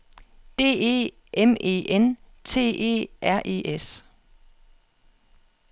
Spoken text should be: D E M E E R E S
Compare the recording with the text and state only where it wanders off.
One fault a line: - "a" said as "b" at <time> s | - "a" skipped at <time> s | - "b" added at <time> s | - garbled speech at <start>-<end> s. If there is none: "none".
- "N T" added at 1.9 s